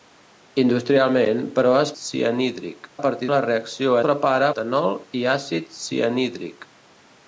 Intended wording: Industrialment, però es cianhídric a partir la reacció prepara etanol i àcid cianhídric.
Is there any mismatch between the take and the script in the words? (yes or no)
no